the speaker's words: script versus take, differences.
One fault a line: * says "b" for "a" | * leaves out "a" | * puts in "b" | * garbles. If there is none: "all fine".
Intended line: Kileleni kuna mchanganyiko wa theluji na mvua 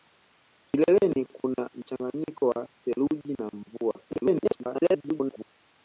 * garbles